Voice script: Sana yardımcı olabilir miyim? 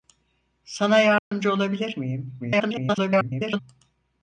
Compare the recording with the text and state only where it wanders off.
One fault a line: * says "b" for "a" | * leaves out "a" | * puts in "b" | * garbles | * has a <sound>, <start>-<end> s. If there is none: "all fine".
* has a dropout, 1.2-1.3 s
* garbles